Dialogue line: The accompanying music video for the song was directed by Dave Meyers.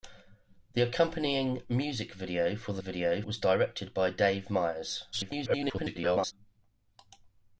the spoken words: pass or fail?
fail